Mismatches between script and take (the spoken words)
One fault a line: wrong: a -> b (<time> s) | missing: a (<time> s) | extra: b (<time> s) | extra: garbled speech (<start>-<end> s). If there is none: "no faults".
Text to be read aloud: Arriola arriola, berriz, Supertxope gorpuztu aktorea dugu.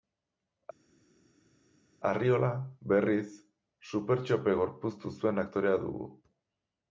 missing: arriola (2.5 s)
extra: zuen (5.2 s)